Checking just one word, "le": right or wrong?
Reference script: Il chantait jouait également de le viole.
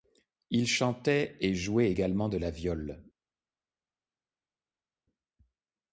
wrong